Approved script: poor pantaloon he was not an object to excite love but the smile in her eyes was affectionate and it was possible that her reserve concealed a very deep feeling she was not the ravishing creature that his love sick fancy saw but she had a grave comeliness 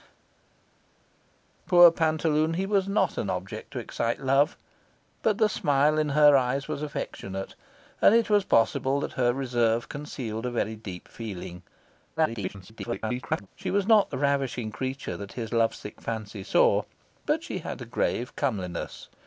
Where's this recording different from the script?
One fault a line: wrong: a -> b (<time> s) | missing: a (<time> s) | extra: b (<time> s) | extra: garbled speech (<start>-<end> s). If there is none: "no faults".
extra: garbled speech (12.2-13.5 s)